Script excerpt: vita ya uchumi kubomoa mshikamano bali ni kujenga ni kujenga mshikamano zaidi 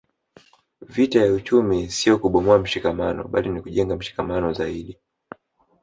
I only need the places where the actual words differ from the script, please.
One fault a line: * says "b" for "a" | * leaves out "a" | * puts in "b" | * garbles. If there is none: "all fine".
* puts in "sio"
* leaves out "ni kujenga"